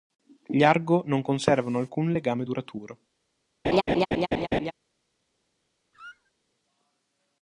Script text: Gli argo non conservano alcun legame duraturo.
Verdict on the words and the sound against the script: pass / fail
fail